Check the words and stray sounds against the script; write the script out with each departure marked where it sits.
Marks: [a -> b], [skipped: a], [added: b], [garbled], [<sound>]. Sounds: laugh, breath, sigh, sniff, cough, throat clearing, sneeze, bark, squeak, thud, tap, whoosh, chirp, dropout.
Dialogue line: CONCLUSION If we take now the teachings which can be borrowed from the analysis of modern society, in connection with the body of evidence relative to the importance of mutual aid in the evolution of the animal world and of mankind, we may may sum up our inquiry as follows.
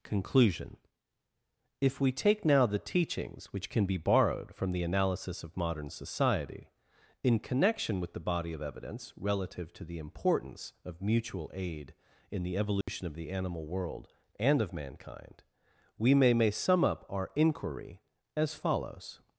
CONCLUSION If we take now the teachings which can be borrowed from the analysis of modern society, in connection with the body of evidence relative to the importance of mutual aid in the evolution [dropout] of the animal world and of mankind, we may may sum up our inquiry as follows.